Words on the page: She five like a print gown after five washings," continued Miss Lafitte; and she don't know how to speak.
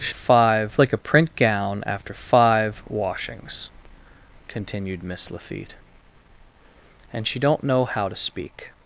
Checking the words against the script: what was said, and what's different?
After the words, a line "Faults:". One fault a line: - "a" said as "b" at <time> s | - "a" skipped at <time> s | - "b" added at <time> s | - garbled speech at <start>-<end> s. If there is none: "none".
She five like a print gown after five washings," continued Miss Lafitte; and she don't know how to speak.
Faults:
none